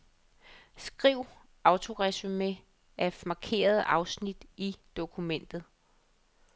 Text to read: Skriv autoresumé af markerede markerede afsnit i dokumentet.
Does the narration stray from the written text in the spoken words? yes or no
yes